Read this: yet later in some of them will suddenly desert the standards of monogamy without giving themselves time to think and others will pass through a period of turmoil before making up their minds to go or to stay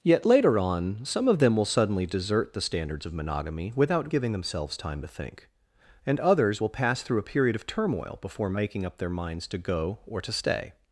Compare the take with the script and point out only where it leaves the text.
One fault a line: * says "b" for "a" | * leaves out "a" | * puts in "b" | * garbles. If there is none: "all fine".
* says "on" for "in"